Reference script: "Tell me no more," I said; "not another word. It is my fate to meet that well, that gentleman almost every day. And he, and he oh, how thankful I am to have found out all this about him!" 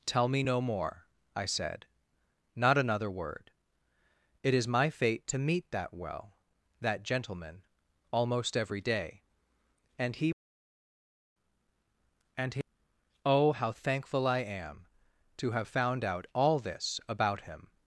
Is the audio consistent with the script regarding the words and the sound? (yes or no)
yes